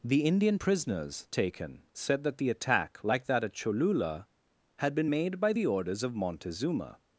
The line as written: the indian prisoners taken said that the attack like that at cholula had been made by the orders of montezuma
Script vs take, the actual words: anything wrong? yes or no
no